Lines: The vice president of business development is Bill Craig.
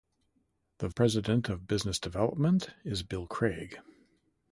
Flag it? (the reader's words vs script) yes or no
yes